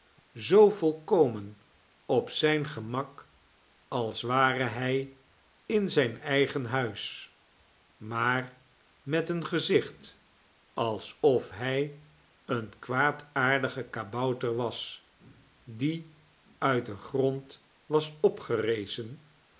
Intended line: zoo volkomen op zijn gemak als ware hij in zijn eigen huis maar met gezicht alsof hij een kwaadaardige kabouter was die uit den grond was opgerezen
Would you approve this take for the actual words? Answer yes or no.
no